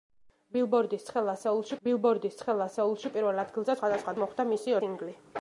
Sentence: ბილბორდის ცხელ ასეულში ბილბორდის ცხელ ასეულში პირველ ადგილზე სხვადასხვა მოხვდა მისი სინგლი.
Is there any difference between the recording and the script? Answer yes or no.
no